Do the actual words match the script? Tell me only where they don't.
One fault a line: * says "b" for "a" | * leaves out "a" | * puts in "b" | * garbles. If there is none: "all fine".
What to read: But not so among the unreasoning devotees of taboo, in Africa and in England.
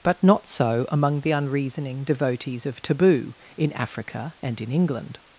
all fine